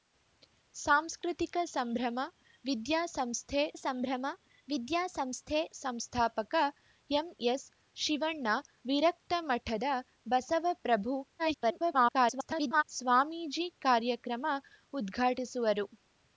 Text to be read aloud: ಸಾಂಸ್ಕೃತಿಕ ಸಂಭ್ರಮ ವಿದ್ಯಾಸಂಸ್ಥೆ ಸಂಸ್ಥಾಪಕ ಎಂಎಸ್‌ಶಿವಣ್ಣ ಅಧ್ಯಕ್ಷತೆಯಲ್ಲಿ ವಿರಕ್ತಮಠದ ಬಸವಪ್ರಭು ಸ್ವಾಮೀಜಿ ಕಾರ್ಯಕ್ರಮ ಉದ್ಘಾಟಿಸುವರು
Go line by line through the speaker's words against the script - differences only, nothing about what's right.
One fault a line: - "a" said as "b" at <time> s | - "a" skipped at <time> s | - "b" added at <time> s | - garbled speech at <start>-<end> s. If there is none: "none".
- "ಸಂಭ್ರಮ ವಿದ್ಯಾಸಂಸ್ಥೆ" added at 3.7 s
- "ಅಧ್ಯಕ್ಷತೆಯಲ್ಲಿ" skipped at 8.5 s
- garbled speech at 11.4-12.8 s